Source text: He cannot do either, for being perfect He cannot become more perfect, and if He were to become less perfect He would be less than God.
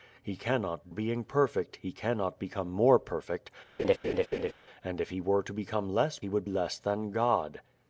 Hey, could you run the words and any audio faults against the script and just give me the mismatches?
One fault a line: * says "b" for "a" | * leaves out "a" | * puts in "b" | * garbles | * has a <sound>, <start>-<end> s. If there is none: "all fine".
* leaves out "do either for"
* has a laugh, 3.8-4.5 s
* leaves out "perfect"
* leaves out "be"